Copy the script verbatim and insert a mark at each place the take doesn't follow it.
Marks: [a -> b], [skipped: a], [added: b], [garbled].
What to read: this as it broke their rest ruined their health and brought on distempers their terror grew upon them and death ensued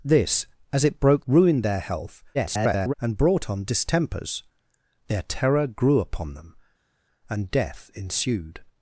this as it broke [skipped: their rest] ruined their health [garbled] and brought on distempers their terror grew upon them and death ensued